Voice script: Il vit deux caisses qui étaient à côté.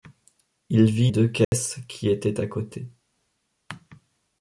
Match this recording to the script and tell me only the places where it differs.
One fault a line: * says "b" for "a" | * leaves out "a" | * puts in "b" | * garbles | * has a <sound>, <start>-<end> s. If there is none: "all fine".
* has a dropout, 1.4-1.5 s